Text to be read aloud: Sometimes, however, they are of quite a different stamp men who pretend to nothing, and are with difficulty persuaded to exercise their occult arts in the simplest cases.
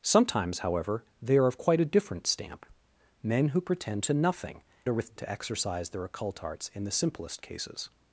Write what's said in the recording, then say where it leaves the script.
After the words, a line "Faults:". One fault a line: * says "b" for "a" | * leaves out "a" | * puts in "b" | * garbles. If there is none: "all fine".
Sometimes, however, they are of quite a different stamp men who pretend to nothing, are with to exercise their occult arts in the simplest cases.
Faults:
* leaves out "and"
* leaves out "difficulty persuaded"